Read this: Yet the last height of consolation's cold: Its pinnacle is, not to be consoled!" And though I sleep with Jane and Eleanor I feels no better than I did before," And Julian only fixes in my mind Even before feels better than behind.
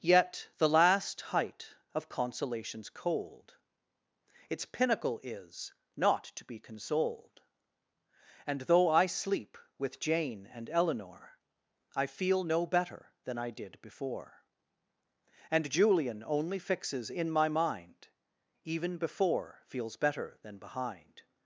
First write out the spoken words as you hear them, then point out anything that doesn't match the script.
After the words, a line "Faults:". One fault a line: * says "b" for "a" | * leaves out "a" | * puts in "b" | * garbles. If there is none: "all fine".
Yet the last height of consolation's cold: Its pinnacle is, not to be consoled!" And though I sleep with Jane and Eleanor I feel no better than I did before," And Julian only fixes in my mind Even before feels better than behind.
Faults:
* says "feel" for "feels"